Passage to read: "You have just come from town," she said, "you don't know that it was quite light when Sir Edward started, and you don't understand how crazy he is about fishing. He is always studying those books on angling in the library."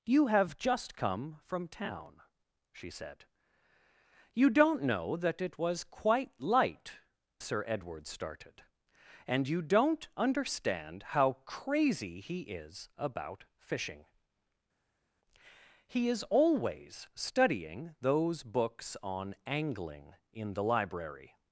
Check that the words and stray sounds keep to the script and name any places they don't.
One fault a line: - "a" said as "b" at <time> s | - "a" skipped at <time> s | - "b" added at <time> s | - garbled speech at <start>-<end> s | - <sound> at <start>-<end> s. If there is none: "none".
- "when" skipped at 7.0 s